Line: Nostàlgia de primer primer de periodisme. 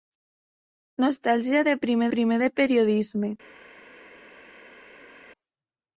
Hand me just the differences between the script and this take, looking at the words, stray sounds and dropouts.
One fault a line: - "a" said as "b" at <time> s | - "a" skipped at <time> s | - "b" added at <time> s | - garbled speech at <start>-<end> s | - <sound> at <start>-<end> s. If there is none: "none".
none